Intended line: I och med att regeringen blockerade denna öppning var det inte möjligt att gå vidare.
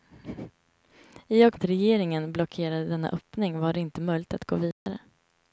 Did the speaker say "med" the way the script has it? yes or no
no